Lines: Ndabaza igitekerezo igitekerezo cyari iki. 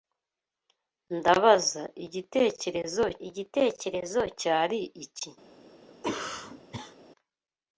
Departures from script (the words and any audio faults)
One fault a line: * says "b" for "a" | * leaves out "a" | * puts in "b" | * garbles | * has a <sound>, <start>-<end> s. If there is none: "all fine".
* has a cough, 5.9-7.0 s